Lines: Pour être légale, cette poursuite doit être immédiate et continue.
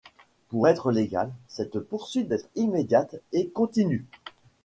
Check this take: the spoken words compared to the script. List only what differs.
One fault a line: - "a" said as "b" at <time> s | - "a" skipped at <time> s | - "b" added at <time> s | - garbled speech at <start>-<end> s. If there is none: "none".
- "doit" skipped at 2.3 s